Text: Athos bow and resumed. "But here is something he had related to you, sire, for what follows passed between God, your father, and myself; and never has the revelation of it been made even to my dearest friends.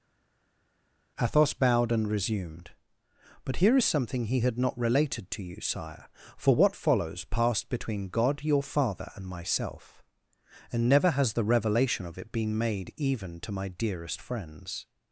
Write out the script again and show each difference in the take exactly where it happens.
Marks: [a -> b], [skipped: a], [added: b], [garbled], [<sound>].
Athos [bow -> bowed] and resumed. "But here is something he had [added: not] related to you, sire, for what follows passed between God, your father, and myself; and never has the revelation of it been made even to my dearest friends.